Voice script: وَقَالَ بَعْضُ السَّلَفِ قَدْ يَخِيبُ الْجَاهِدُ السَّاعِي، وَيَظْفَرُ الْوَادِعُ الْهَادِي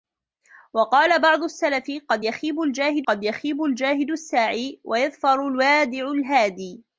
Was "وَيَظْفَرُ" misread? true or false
false